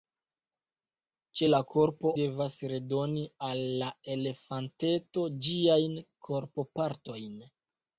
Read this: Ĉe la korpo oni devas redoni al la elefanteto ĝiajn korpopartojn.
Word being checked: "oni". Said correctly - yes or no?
no